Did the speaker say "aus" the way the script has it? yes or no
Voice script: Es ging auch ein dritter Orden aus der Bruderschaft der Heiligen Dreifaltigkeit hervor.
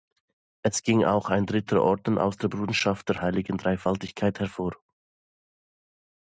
yes